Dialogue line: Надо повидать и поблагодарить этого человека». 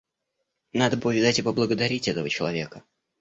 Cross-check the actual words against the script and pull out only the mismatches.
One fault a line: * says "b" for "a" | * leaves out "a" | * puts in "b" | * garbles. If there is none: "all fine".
all fine